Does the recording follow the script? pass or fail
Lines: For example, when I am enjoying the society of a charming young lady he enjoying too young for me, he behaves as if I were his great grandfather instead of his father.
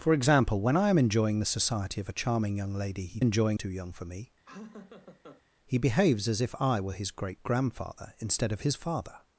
pass